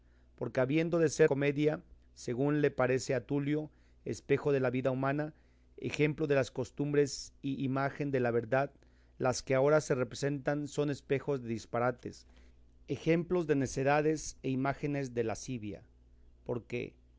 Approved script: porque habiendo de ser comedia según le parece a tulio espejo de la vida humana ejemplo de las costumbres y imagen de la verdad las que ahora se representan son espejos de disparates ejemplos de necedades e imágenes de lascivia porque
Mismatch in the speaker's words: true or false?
false